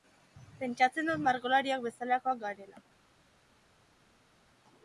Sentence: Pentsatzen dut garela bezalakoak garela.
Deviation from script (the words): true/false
true